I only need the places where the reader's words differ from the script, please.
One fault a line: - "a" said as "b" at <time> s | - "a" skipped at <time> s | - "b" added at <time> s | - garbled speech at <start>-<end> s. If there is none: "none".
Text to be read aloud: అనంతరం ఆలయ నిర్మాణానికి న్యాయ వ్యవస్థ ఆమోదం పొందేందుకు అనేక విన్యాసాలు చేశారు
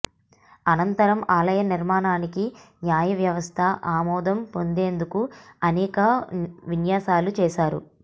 none